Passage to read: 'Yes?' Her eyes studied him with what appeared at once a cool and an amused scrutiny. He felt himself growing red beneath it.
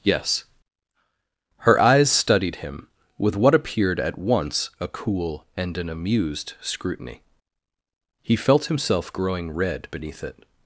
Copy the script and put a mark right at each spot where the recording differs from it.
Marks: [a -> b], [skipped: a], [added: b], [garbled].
'Yes?' Her eyes studied him with what appeared at once a cool and an amused scrutiny. He felt himself growing red beneath it.